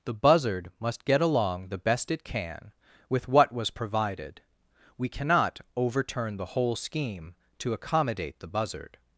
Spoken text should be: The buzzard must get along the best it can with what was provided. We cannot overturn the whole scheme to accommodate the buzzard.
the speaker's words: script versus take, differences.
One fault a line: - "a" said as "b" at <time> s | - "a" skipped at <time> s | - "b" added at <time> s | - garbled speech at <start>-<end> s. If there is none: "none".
none